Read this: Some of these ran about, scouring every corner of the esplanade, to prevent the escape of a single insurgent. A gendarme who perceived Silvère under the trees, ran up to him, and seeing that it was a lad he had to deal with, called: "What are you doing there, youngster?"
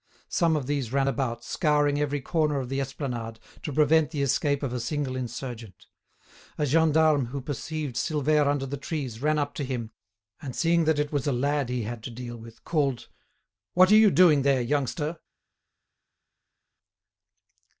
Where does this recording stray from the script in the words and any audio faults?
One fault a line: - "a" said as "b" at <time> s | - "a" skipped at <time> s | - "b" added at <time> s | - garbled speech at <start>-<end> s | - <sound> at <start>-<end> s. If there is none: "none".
none